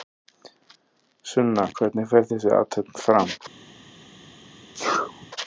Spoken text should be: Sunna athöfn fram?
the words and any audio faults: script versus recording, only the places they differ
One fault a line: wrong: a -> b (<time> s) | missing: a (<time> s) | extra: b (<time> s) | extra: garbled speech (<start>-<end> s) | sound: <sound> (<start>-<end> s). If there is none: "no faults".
extra: hvernig fer þessi (1.8 s)
sound: sneeze (4.7-5.3 s)